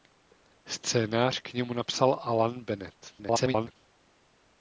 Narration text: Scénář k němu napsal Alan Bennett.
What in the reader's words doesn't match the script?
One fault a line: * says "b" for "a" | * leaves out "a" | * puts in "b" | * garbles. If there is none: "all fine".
* garbles